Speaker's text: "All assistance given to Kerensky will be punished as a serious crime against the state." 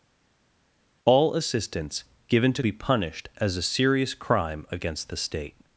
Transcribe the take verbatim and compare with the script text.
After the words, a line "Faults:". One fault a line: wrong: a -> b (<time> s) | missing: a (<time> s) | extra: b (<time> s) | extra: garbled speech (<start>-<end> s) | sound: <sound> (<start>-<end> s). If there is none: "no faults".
"All assistance given to Be punished as a serious crime against the state."
Faults:
missing: Kerensky will (2.6 s)